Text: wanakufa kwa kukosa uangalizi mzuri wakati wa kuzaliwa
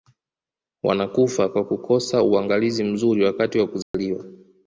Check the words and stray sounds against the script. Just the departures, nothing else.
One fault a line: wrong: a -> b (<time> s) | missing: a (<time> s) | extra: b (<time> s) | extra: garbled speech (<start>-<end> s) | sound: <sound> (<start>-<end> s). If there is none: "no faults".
sound: dropout (3.8-3.9 s)